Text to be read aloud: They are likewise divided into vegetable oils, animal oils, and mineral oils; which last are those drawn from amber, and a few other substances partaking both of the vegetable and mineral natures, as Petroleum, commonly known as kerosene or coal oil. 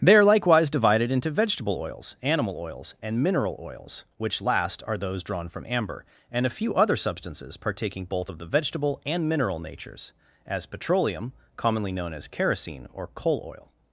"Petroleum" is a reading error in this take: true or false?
false